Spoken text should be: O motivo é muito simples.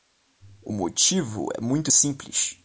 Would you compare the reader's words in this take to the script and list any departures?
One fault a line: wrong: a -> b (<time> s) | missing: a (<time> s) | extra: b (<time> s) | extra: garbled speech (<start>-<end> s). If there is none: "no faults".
no faults